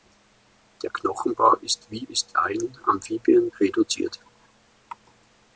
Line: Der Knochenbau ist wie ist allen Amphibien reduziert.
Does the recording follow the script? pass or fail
pass